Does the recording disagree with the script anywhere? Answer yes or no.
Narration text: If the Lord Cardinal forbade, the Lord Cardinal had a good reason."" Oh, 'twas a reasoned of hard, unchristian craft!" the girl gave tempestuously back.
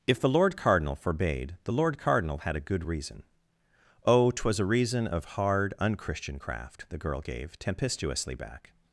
yes